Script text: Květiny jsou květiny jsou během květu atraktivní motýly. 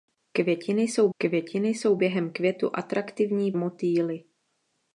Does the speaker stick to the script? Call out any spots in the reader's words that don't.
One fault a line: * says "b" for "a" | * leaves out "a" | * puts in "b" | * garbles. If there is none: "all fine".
all fine